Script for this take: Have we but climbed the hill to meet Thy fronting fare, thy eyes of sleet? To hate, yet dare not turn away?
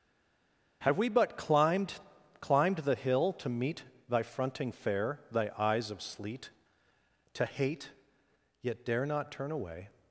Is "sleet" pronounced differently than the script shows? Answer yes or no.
no